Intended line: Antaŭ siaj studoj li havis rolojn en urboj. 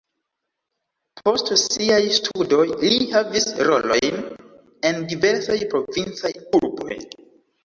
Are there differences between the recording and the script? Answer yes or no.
yes